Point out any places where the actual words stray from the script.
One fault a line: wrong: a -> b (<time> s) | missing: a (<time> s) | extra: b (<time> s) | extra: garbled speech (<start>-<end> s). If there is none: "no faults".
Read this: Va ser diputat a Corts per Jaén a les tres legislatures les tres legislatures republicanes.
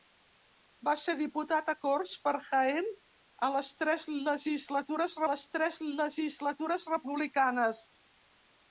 no faults